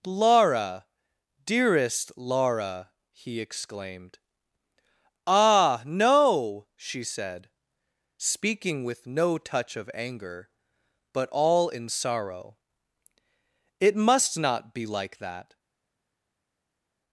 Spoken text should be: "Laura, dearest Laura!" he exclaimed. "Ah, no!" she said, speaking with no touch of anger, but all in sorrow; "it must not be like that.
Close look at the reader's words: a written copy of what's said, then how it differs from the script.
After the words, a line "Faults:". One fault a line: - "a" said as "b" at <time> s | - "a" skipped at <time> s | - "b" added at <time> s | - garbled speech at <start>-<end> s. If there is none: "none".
"Laura, dearest Laura!" he exclaimed. "Ah, no!" she said, speaking with no touch of anger, but all in sorrow; "it must not be like that.
Faults:
none